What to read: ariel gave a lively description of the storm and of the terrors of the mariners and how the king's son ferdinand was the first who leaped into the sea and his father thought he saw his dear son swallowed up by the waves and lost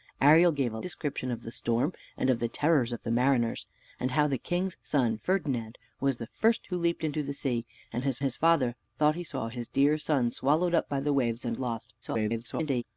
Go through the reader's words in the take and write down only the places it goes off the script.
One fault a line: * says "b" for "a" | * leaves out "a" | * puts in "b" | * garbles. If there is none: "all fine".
* leaves out "lively"
* puts in "his"
* garbles